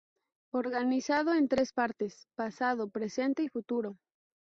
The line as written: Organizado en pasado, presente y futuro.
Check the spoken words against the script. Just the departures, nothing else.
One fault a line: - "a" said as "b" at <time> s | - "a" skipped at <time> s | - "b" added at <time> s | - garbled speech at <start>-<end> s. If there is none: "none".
- "tres partes" added at 1.5 s